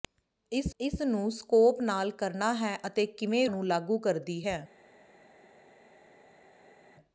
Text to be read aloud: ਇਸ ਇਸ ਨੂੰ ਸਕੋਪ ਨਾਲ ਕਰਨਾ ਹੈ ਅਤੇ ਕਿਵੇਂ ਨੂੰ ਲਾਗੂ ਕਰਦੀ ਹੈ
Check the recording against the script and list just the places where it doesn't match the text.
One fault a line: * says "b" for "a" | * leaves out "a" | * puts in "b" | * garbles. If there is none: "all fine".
all fine